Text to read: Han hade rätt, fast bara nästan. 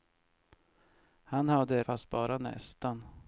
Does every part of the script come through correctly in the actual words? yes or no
no